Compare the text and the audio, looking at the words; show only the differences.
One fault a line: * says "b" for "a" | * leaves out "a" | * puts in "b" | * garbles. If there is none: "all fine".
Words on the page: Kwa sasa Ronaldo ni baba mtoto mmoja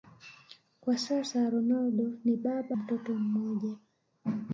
all fine